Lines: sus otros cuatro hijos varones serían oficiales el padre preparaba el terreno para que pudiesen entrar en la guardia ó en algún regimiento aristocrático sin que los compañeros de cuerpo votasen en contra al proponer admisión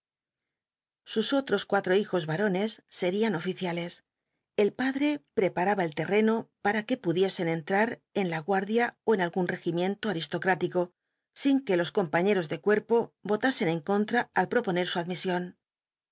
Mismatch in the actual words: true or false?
true